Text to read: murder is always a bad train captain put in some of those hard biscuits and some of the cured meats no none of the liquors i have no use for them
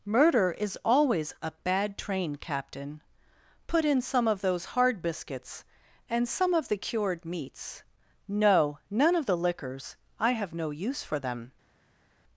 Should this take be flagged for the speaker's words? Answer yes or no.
no